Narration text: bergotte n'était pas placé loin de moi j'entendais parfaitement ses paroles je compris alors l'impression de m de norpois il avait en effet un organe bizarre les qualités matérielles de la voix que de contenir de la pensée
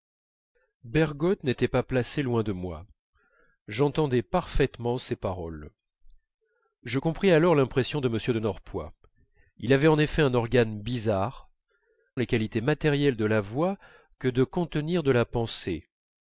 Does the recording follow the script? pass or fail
pass